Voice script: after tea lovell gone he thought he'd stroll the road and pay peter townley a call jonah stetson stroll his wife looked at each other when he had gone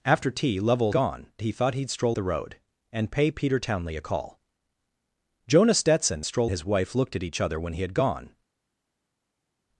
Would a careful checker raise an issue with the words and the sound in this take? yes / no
no